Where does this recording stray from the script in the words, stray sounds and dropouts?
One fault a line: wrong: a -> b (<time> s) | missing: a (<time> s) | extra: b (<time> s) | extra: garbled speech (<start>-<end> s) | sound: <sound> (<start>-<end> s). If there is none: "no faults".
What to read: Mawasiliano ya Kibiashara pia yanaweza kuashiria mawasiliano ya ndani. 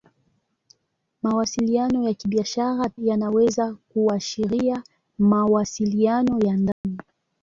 missing: pia (2.9 s)
sound: dropout (6.7-6.8 s)